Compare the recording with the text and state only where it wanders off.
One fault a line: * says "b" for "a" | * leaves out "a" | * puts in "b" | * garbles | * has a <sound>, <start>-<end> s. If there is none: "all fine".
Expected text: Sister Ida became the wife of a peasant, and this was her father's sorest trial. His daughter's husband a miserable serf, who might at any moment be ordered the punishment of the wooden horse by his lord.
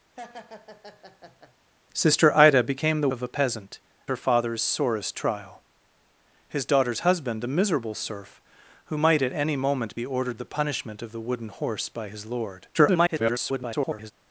* has a laugh, 0.2-1.6 s
* leaves out "wife"
* leaves out "and this was"
* garbles